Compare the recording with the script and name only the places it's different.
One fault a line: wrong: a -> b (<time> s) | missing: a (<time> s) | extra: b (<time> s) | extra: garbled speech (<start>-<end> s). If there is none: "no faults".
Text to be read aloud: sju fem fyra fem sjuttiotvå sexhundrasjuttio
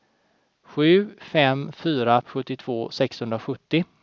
missing: fem (2.2 s)